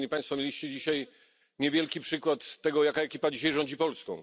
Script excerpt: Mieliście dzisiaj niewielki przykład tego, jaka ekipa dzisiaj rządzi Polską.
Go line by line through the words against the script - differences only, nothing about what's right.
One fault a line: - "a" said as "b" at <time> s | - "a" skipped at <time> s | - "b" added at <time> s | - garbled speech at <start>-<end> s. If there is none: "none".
none